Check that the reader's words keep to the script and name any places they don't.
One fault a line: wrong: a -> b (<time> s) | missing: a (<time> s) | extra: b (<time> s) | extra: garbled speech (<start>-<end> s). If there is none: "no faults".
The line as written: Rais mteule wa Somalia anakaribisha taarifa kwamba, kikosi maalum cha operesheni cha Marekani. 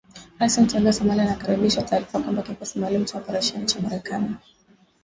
no faults